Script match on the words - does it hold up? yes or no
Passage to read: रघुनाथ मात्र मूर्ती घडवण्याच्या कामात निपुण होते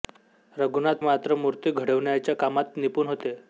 yes